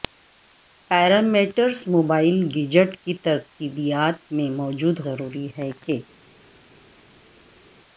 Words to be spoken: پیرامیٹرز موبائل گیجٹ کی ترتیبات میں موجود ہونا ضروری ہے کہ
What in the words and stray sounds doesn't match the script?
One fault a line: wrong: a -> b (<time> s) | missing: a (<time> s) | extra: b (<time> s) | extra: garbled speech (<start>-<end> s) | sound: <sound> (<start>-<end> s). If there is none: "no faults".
missing: ہونا (5.0 s)